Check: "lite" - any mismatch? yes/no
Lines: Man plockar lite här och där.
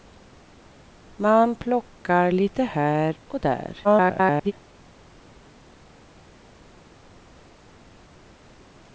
no